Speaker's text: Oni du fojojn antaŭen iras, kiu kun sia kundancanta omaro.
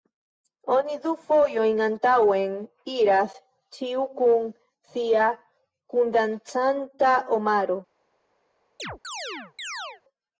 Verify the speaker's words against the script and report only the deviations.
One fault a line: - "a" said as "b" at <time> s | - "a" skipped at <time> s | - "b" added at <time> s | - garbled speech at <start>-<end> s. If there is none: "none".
- "kiu" said as "ĉiu" at 3.8 s